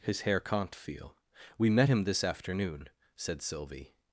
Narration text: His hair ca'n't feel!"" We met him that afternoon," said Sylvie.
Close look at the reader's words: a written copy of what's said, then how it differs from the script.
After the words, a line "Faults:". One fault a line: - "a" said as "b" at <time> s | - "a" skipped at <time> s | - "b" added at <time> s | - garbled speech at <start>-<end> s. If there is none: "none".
His hair ca'n't feel!"" We met him this afternoon," said Sylvie.
Faults:
- "that" said as "this" at 2.0 s